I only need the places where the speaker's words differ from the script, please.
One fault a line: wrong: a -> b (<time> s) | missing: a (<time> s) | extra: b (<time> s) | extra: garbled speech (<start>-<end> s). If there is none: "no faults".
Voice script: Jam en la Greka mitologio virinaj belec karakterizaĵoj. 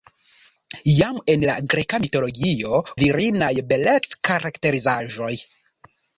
no faults